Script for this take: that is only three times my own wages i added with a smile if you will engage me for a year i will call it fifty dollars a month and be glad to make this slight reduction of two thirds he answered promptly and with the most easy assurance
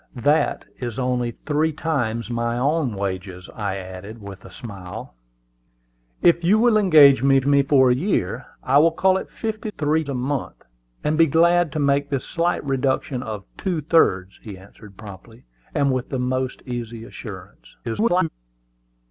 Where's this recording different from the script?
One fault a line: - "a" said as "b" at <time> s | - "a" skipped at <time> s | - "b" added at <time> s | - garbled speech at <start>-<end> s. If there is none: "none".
- "me" added at 7.4 s
- "dollars" said as "three" at 9.8 s
- garbled speech at 17.8-18.3 s